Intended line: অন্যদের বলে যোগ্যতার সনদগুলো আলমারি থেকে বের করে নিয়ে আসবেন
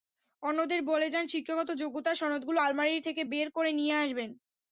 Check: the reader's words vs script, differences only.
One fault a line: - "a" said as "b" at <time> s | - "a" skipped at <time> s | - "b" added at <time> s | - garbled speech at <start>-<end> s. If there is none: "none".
- "যান শিক্ষাগত" added at 1.1 s